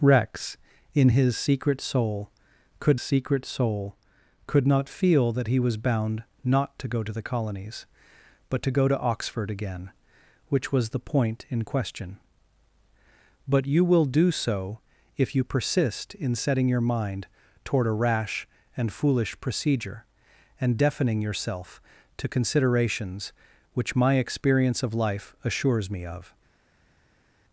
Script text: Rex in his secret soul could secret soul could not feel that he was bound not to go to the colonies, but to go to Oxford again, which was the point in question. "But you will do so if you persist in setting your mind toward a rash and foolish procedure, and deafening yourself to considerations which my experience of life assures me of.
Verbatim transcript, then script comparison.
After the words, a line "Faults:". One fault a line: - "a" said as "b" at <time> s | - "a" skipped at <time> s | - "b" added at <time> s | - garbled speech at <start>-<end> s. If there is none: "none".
Rex in his secret soul could secret soul could not feel that he was bound not to go to the colonies, but to go to Oxford again, which was the point in question. "But you will do so if you persist in setting your mind toward a rash and foolish procedure, and deafening yourself to considerations which my experience of life assures me of.
Faults:
none